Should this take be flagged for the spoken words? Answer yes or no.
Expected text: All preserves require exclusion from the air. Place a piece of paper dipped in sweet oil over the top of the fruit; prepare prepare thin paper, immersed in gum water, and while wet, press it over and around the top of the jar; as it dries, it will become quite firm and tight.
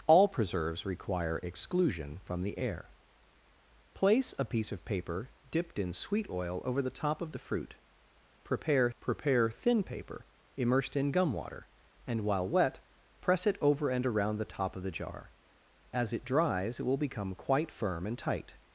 no